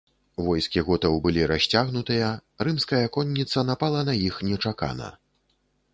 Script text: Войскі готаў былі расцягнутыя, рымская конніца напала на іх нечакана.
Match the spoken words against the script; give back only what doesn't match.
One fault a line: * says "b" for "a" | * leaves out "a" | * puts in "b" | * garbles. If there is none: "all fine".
all fine